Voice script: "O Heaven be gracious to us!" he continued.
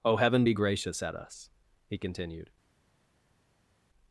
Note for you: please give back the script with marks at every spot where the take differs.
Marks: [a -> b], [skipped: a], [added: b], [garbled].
"O Heaven be gracious [to -> at] us!" he continued.